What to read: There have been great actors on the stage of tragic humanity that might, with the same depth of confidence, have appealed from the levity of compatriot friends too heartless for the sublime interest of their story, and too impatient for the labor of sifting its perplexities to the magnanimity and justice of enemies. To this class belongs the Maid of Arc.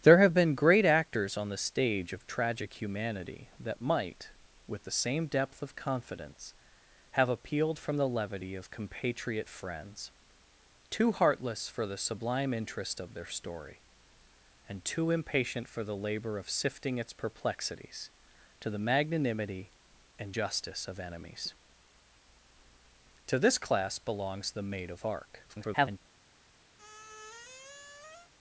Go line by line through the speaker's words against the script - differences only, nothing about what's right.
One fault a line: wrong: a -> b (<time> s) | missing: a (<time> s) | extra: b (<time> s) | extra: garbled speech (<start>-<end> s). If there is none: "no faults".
extra: garbled speech (25.5-26.0 s)